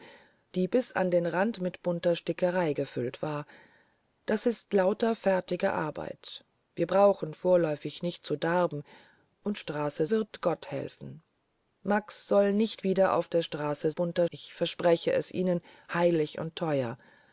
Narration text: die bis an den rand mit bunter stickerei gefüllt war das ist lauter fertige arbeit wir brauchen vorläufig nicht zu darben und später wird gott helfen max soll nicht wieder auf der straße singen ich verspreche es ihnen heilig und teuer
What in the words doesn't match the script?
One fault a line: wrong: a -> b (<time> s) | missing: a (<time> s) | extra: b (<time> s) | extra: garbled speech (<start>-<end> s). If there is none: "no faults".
wrong: später -> straße (9.6 s)
wrong: singen -> bunter (14.0 s)